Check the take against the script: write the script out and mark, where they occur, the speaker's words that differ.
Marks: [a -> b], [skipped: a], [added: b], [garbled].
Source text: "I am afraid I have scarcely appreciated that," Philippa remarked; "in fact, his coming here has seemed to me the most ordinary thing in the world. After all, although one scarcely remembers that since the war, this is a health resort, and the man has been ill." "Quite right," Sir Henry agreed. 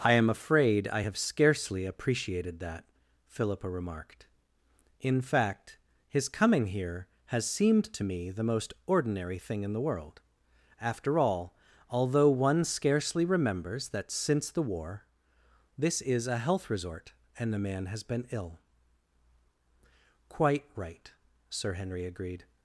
"I am afraid I have scarcely appreciated that," Philippa remarked; "in fact, his coming here has seemed to me the most ordinary thing in the world. After all, although one scarcely remembers that since the war, this is a health resort, and the man has been ill." "Quite right," Sir Henry agreed.